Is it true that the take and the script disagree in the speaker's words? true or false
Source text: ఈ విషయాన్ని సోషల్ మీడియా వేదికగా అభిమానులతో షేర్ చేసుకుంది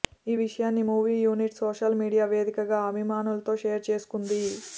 true